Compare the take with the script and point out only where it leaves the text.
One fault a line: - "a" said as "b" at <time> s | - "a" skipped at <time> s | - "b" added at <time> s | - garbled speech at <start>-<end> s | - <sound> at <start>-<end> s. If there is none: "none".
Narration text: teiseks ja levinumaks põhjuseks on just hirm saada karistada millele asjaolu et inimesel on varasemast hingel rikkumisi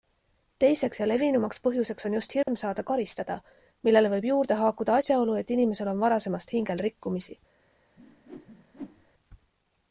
- dropout at 2.4-2.5 s
- "võib juurde haakuda" added at 4.1 s
- whoosh at 8.0-9.1 s